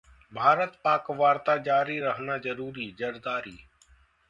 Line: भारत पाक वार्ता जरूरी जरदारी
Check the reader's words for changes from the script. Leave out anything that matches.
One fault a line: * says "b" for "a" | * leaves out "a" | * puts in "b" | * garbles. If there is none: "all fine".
* puts in "जारी रहना"